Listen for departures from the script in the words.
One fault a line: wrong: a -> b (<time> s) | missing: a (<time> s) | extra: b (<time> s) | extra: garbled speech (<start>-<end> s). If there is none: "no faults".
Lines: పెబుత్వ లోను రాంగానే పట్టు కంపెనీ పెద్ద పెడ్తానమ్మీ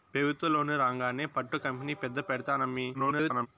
extra: garbled speech (2.9-3.5 s)